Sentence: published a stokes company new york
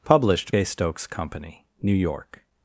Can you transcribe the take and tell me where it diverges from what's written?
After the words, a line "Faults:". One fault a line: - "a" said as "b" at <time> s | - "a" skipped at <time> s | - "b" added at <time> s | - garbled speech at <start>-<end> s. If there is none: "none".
published a stokes company new york
Faults:
none